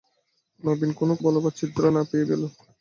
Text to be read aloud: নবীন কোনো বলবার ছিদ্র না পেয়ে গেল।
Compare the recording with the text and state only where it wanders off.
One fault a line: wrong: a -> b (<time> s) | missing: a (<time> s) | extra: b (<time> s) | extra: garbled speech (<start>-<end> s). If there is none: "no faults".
no faults